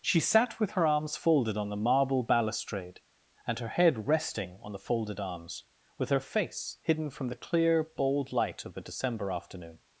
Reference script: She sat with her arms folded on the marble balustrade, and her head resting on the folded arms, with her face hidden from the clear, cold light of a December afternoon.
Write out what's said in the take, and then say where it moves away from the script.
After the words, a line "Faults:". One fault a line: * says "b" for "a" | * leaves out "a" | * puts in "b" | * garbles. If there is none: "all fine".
She sat with her arms folded on the marble balustrade, and her head resting on the folded arms, with her face hidden from the clear, bold light of a December afternoon.
Faults:
* says "bold" for "cold"